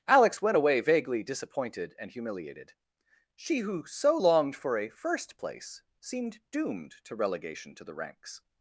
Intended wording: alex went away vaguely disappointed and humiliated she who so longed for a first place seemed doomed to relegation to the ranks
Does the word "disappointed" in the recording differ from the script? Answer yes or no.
no